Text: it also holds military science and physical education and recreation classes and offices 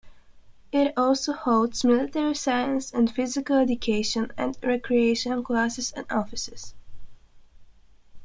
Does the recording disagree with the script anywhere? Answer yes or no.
no